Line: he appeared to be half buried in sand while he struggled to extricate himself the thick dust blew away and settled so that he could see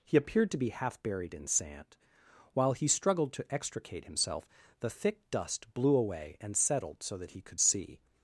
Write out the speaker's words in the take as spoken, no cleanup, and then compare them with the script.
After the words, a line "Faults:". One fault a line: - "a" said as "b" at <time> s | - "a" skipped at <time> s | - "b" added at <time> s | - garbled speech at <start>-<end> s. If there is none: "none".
he appeared to be half buried in sand while he struggled to extricate himself the thick dust blew away and settled so that he could see
Faults:
none